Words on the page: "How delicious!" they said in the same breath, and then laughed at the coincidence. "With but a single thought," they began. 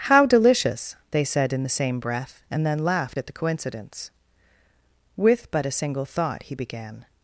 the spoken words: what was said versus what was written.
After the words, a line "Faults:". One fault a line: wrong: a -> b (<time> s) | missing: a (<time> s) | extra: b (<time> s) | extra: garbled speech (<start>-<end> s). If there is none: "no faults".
"How delicious!" they said in the same breath, and then laughed at the coincidence. "With but a single thought," he began.
Faults:
wrong: they -> he (6.4 s)